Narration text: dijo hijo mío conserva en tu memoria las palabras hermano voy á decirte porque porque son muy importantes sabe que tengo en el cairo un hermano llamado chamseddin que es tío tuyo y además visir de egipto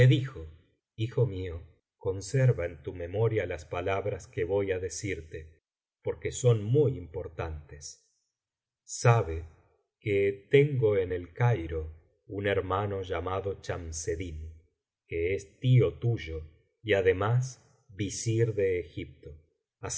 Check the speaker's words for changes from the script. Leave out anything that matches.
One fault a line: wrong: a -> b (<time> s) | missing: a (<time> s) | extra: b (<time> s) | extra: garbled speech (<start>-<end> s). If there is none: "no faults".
wrong: hermano -> que (4.3 s)
missing: porque (6.3 s)